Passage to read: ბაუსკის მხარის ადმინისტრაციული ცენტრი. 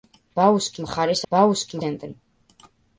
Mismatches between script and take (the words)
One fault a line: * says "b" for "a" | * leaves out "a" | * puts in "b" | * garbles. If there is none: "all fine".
* says "ბაუსკის" for "ადმინისტრაციული"